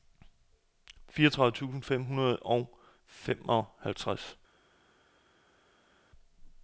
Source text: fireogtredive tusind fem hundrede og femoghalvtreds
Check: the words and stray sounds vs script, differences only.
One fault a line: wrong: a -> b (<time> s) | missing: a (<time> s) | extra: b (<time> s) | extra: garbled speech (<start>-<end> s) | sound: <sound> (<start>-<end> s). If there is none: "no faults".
no faults